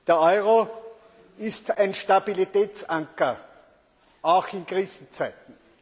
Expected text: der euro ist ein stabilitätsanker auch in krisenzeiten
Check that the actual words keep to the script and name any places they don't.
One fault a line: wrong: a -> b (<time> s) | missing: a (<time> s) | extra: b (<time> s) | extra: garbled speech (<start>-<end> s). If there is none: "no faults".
no faults